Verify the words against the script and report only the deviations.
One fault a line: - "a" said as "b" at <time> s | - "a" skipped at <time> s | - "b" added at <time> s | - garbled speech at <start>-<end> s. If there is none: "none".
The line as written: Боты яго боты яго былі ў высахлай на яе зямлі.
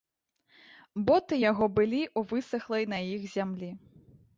- "боты яго" skipped at 1.7 s
- "яе" said as "іх" at 3.2 s